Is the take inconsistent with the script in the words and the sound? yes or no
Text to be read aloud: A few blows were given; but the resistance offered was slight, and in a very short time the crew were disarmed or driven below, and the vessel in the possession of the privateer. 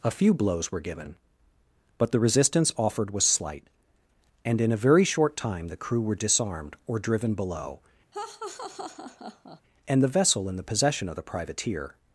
yes